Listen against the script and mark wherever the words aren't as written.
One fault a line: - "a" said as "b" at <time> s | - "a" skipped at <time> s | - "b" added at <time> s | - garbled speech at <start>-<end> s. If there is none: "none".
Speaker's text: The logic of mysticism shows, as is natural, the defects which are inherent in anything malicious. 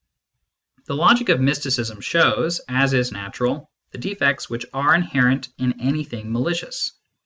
none